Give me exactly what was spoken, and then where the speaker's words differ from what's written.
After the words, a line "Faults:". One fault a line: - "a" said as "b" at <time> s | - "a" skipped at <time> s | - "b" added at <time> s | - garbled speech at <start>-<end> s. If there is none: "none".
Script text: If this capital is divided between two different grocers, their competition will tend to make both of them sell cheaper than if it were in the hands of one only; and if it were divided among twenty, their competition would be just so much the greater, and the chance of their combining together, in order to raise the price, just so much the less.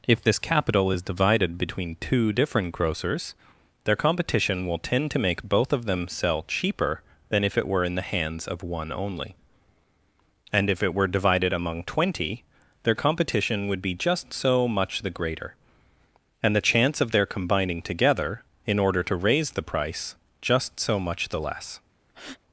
If this capital is divided between two different grocers, their competition will tend to make both of them sell cheaper than if it were in the hands of one only; and if it were divided among twenty, their competition would be just so much the greater, and the chance of their combining together, in order to raise the price, just so much the less.
Faults:
none